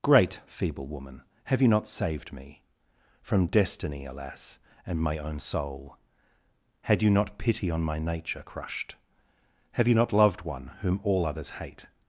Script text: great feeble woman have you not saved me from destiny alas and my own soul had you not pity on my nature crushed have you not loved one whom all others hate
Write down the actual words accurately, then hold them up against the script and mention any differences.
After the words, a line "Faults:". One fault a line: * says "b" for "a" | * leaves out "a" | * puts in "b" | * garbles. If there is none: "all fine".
great feeble woman have you not saved me from destiny alas and my own soul had you not pity on my nature crushed have you not loved one whom all others hate
Faults:
all fine